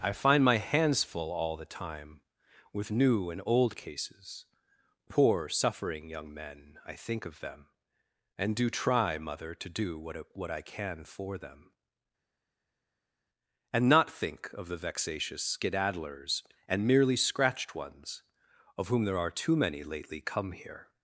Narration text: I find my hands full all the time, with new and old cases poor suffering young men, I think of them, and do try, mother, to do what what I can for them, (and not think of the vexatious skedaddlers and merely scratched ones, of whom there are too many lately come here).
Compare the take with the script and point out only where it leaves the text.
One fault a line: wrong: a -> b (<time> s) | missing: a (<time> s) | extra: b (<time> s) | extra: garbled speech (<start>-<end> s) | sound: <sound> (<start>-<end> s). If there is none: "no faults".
no faults